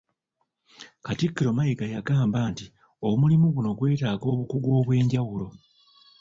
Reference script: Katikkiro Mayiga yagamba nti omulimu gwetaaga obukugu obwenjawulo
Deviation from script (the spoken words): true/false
true